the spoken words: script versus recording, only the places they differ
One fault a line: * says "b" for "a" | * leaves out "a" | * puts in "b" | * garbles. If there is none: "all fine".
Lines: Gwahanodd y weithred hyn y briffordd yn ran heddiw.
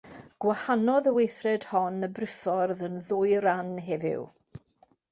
* says "hon" for "hyn"
* puts in "ddwy"